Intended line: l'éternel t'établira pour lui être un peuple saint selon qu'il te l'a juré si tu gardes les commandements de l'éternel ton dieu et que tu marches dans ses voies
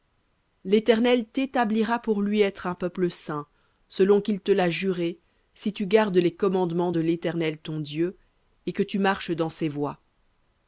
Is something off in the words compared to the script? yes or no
no